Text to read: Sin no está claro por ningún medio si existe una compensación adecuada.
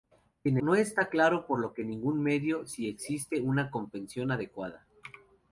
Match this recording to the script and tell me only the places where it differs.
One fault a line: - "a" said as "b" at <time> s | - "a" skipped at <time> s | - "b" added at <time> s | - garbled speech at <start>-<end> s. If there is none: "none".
none